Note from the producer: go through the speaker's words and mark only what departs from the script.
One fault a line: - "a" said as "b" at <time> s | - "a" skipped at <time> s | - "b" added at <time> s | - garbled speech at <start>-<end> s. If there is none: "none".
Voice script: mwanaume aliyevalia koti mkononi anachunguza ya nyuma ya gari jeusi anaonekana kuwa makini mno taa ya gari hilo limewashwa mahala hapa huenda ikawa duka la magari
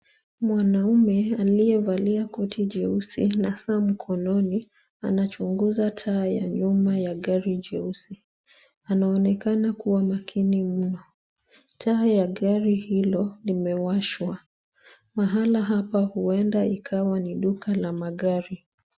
- "jeusi na saa" added at 2.6 s
- "taa" added at 5.9 s
- "ni" added at 17.2 s